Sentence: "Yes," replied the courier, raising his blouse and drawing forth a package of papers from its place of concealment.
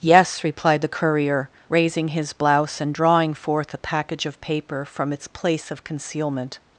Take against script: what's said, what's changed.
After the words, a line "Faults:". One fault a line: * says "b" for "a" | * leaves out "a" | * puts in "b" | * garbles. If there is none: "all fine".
"Yes," replied the courier, raising his blouse and drawing forth a package of paper from its place of concealment.
Faults:
* says "paper" for "papers"